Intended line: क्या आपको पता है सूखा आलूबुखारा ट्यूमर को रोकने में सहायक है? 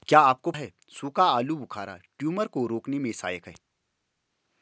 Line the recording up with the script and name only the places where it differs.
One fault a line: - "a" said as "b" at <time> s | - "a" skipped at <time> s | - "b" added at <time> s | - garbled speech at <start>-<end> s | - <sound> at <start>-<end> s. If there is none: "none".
- "पता" skipped at 0.5 s